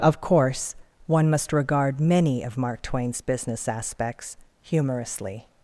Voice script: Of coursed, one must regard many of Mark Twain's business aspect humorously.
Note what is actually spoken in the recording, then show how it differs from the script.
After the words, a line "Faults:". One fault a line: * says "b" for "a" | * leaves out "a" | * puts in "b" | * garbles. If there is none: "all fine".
Of course, one must regard many of Mark Twain's business aspects humorously.
Faults:
* says "course" for "coursed"
* says "aspects" for "aspect"